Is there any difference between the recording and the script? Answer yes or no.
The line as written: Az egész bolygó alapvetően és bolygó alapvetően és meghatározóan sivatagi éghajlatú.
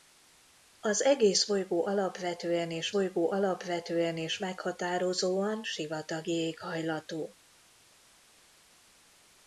no